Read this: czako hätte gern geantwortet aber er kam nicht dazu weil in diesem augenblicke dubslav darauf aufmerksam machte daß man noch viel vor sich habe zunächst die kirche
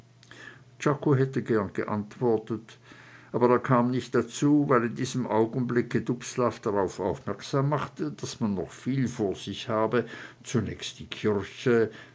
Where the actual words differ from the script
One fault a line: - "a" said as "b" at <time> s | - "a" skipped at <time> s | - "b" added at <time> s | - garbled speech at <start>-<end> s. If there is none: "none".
none